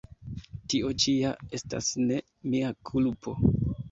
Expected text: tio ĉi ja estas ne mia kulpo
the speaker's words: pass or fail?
pass